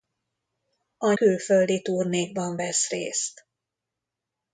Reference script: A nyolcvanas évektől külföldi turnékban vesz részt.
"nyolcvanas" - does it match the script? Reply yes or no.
no